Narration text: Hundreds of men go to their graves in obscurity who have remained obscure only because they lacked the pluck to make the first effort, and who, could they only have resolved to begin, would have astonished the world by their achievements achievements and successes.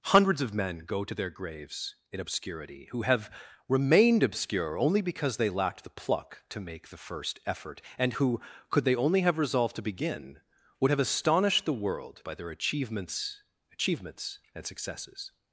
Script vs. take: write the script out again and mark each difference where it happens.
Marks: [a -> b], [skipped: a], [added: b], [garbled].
Hundreds of men go to their graves in obscurity who have remained obscure only because they lacked the pluck to make the first effort, and who, could they only have resolved to begin, would have astonished the world by their achievements achievements and successes.